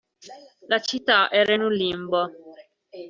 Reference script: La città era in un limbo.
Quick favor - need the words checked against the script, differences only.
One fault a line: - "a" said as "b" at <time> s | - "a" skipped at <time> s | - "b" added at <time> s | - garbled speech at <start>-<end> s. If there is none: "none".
none